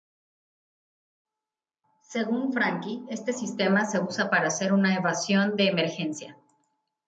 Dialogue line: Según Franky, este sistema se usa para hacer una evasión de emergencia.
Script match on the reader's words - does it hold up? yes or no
yes